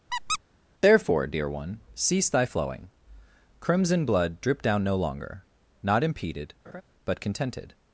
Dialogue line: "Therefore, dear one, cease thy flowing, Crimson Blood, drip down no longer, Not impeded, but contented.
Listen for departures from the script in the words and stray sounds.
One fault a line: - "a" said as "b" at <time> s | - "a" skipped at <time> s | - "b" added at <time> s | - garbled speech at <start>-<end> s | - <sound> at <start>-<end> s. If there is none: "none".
- squeak at 0.1-0.4 s
- laugh at 6.6-6.8 s